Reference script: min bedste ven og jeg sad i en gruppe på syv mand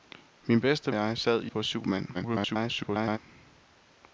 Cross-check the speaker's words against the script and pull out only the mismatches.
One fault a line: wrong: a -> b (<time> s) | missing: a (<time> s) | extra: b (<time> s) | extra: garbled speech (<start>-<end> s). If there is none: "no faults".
missing: ven og (0.9 s)
missing: en gruppe (1.5 s)
extra: garbled speech (2.1-3.2 s)